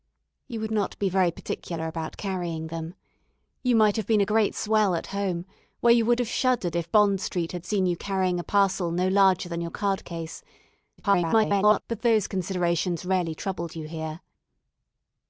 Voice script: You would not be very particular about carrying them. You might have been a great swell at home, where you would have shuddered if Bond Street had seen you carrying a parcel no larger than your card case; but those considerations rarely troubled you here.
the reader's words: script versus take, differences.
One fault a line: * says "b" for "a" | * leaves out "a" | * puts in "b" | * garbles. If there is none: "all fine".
* garbles